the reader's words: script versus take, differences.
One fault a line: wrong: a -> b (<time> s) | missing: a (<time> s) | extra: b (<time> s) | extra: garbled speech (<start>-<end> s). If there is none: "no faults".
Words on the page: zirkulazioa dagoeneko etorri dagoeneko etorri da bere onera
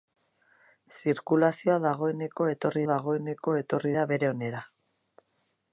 no faults